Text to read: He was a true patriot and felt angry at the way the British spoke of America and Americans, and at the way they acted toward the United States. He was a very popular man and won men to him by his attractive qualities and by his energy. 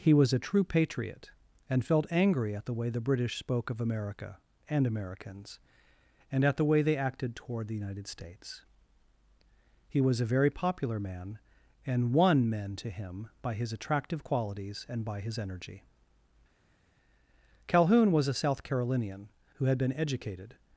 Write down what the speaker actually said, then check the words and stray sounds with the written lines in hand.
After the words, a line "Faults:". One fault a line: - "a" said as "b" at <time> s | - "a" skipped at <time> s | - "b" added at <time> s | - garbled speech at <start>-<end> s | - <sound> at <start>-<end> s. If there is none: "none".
He was a true patriot and felt angry at the way the British spoke of America and Americans, and at the way they acted toward the United States. He was a very popular man and won men to him by his attractive qualities and by his energy. Calhoun was a South Carolinian who had been educated
Faults:
- "Calhoun was a South Carolinian who had been educated" added at 17.7 s